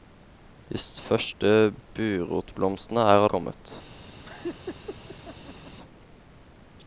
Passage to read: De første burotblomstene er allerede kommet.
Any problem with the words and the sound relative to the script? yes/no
yes